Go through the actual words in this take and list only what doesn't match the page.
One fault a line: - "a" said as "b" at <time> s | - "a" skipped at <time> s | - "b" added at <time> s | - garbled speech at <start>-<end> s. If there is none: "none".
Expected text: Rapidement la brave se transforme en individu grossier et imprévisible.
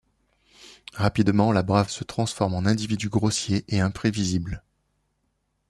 none